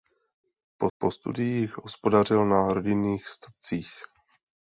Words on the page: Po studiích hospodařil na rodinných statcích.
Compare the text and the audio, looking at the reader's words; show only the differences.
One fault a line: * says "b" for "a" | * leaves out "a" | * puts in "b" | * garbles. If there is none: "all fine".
* puts in "po"